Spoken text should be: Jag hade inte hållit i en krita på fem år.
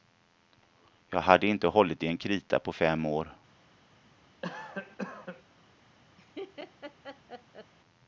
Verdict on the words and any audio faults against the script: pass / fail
fail